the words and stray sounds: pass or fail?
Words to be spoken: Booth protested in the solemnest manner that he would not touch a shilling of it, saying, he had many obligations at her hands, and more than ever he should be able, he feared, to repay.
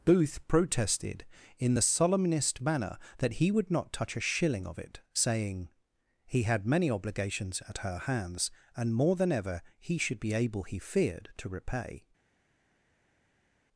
pass